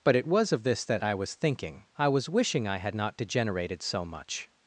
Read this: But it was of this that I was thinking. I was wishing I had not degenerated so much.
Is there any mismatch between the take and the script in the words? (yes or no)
no